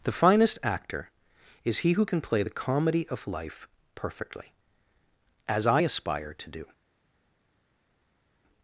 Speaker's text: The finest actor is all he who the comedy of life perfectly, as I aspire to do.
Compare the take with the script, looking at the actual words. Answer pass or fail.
fail